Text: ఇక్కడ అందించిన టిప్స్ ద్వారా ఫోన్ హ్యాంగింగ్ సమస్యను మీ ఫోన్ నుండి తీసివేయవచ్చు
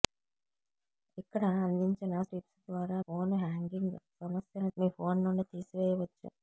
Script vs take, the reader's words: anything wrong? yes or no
no